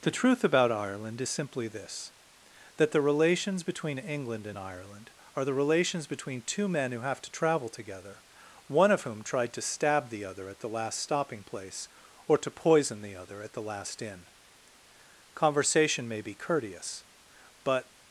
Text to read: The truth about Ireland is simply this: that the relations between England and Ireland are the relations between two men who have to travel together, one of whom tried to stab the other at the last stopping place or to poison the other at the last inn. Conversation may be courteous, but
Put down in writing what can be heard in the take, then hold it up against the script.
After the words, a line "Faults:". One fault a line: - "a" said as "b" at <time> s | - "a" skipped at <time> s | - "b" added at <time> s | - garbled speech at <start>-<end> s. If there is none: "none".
The truth about Ireland is simply this: that the relations between England and Ireland are the relations between two men who have to travel together, one of whom tried to stab the other at the last stopping place or to poison the other at the last inn. Conversation may be courteous, but
Faults:
none